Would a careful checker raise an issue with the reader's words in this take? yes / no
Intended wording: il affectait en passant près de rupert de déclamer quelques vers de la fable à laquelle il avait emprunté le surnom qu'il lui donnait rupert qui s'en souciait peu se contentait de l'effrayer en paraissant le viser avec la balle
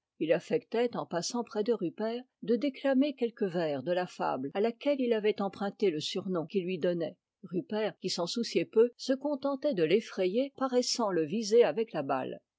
yes